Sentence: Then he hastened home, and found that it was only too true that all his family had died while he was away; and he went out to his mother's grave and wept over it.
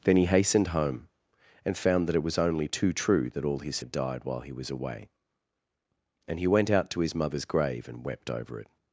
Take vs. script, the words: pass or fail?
fail